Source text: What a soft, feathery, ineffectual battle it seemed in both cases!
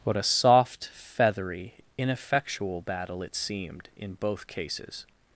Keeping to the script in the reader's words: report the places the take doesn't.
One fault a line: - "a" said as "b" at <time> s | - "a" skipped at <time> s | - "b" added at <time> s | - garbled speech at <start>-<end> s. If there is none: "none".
none